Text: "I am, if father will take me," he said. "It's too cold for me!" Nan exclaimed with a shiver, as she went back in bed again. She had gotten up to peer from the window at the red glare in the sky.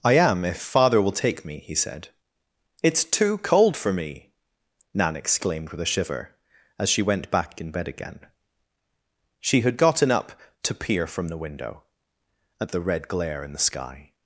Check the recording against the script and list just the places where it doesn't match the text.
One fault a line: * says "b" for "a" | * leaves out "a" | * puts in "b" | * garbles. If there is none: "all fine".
all fine